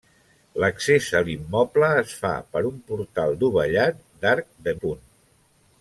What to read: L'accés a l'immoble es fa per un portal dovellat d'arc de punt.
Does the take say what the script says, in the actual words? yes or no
yes